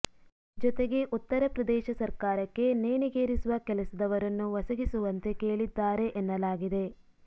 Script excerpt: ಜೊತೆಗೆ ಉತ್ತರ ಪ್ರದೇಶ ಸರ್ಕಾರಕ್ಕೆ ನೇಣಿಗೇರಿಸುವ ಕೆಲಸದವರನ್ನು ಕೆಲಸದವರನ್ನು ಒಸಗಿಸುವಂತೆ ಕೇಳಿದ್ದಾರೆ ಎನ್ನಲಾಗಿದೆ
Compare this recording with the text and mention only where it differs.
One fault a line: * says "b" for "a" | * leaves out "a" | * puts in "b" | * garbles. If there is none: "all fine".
* leaves out "ಕೆಲಸದವರನ್ನು"